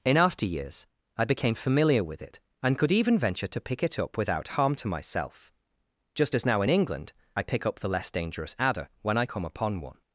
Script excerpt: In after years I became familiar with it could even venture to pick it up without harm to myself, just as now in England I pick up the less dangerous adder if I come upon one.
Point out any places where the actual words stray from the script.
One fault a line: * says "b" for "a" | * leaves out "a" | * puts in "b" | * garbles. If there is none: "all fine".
* puts in "and"
* says "when" for "if"